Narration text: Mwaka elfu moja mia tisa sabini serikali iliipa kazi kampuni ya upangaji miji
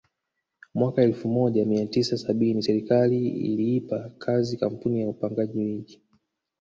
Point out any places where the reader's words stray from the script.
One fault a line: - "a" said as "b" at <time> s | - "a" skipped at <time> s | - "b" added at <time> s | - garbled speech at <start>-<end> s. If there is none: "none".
none